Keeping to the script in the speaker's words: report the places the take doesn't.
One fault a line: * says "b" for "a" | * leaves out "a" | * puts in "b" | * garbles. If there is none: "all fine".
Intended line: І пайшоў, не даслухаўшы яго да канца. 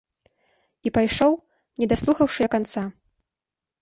* leaves out "яго"